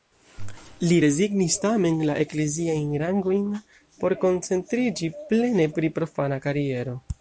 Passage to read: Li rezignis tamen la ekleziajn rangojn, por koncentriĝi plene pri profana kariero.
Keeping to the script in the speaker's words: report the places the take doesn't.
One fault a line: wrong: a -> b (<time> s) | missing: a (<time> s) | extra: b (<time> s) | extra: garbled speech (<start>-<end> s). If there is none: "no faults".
no faults